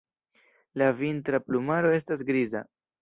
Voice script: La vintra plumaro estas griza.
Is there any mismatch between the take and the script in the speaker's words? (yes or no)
no